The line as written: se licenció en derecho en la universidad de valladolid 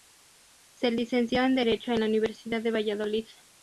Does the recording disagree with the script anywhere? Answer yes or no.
no